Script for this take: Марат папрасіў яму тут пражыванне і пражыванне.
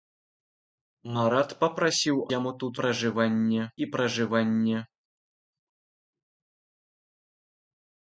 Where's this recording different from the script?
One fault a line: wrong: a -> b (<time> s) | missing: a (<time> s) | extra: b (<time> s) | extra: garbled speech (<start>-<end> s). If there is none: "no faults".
no faults